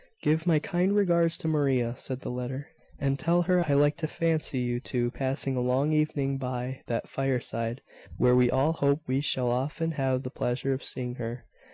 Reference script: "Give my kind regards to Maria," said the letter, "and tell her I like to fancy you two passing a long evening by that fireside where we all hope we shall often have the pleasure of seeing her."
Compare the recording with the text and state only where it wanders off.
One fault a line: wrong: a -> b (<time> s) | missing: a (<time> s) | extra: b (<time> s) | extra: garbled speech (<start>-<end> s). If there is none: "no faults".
no faults